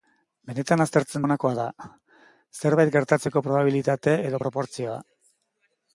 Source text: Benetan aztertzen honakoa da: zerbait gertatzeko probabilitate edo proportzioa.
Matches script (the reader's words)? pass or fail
pass